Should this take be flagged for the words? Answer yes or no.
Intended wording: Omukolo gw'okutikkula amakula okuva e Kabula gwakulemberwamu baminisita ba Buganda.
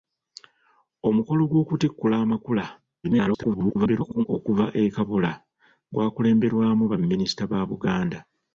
yes